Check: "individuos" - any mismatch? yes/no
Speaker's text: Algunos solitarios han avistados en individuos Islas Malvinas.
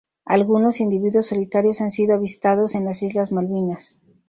yes